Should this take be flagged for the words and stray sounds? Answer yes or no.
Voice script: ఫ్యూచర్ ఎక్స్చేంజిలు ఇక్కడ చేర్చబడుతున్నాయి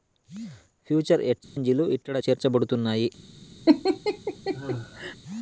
yes